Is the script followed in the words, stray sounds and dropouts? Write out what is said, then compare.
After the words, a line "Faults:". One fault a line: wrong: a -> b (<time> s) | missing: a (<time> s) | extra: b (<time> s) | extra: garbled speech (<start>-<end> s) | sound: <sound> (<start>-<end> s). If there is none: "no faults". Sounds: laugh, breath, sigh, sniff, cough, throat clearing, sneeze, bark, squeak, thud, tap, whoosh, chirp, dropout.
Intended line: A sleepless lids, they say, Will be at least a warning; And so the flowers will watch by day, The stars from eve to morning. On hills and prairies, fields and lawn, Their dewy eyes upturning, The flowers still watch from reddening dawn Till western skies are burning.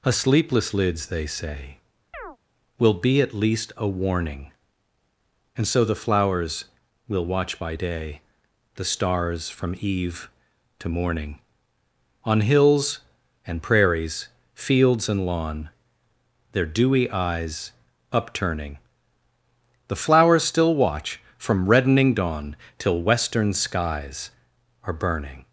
A sleepless lids, they say, Will be at least a warning; And so the flowers will watch by day, The stars from eve to morning. On hills and prairies, fields and lawn, Their dewy eyes upturning, The flowers still watch from reddening dawn Till western skies are burning.
Faults:
sound: chirp (2.1-2.4 s)